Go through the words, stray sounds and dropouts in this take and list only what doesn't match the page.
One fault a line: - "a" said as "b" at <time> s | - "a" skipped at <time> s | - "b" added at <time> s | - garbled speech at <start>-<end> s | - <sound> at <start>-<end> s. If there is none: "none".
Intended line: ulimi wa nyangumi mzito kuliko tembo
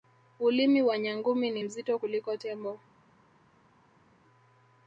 - "ni" added at 1.5 s